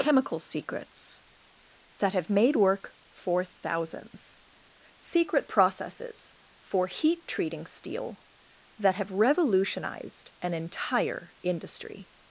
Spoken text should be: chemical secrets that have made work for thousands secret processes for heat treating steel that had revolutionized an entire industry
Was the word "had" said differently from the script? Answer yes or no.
yes